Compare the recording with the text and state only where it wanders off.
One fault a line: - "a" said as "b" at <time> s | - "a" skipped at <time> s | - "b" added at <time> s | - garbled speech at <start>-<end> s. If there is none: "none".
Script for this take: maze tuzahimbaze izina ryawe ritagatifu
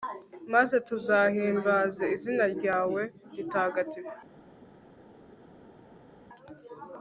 none